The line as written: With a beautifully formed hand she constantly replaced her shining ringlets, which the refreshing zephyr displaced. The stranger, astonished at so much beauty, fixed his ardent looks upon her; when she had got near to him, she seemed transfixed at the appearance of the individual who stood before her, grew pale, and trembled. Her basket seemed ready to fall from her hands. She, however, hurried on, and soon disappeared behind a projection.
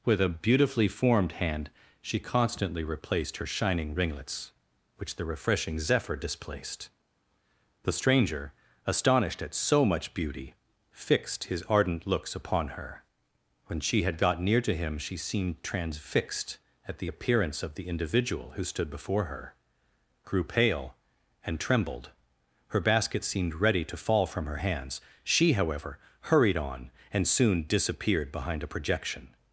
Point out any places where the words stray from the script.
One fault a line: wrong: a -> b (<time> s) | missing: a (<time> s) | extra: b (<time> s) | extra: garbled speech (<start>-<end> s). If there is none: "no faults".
no faults